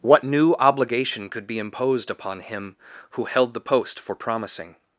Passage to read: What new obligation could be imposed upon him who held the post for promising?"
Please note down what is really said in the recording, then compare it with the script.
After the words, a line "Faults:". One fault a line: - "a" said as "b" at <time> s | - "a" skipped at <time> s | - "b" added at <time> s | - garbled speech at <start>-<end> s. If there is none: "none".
What new obligation could be imposed upon him who held the post for promising?"
Faults:
none